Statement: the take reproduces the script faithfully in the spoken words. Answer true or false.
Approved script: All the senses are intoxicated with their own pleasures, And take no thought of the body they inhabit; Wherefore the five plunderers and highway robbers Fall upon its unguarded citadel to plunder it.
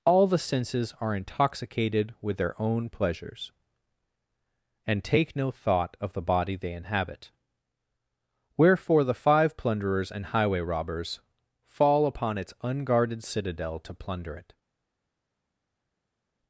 true